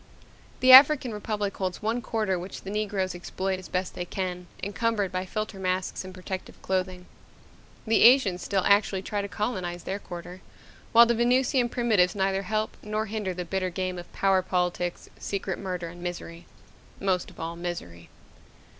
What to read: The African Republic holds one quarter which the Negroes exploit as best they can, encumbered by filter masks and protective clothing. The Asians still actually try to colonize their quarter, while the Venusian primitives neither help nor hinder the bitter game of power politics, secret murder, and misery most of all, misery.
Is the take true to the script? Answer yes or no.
yes